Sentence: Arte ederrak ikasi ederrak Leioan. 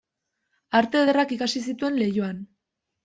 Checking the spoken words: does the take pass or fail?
fail